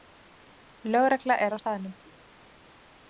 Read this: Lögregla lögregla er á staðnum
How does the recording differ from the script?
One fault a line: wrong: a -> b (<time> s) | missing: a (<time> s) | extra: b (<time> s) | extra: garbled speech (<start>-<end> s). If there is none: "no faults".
missing: lögregla (1.4 s)